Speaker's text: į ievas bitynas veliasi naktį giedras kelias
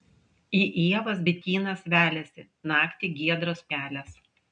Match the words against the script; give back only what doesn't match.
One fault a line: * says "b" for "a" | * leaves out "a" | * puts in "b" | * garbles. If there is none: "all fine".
all fine